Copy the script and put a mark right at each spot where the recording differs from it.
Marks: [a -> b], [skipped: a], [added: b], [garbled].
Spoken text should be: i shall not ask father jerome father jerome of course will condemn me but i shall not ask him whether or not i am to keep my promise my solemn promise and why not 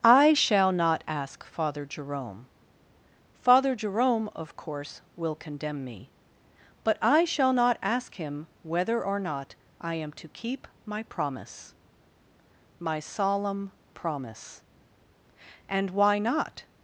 i shall not ask father jerome father jerome of course will condemn me but i shall not ask him whether or not i am to keep my promise my solemn promise and why not